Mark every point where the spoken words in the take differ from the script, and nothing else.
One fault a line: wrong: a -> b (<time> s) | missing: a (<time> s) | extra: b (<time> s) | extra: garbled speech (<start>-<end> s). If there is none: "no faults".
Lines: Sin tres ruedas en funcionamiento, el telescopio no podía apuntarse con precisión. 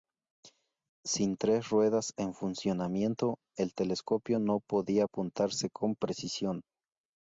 no faults